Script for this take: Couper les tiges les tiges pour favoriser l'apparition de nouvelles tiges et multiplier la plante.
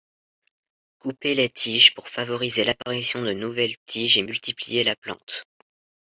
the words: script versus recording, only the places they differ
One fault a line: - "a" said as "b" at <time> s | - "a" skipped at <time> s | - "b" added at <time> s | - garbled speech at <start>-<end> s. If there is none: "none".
- "les tiges" skipped at 1.9 s